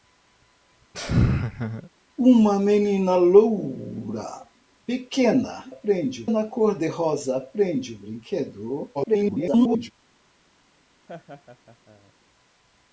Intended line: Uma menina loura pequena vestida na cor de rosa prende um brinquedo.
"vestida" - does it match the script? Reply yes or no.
no